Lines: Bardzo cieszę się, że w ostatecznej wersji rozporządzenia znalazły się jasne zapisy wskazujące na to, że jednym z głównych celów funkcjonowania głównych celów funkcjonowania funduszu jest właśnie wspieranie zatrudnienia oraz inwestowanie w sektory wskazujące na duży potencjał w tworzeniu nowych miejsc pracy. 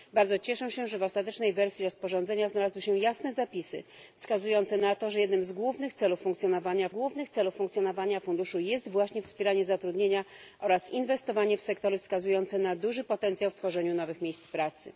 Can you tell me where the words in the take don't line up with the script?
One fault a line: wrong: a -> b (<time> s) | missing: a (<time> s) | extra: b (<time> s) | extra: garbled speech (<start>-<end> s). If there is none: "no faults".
no faults